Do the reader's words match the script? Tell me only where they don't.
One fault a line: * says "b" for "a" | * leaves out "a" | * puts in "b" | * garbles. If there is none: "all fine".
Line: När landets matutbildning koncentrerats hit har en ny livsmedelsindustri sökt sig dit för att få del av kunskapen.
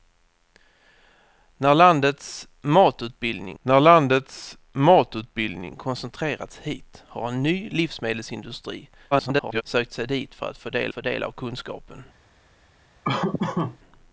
* puts in "när landets matutbildning"
* garbles
* puts in "få del"